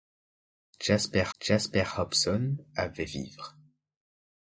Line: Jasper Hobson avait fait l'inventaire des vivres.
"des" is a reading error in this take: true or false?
true